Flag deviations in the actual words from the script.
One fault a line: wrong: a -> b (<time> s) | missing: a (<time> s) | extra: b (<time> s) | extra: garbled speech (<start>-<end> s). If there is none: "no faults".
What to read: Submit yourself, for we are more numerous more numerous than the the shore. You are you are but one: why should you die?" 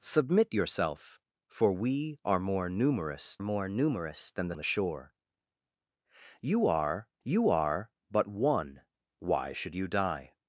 no faults